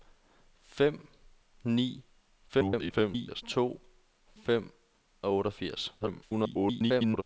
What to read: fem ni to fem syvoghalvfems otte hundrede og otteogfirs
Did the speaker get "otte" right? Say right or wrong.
wrong